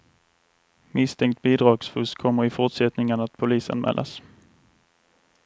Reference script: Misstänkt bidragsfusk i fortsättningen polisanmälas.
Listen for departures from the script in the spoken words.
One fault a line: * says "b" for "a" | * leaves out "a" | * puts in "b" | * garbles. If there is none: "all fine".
* puts in "kommer"
* puts in "att"